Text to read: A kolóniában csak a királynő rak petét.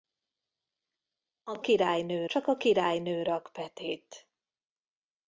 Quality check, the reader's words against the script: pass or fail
fail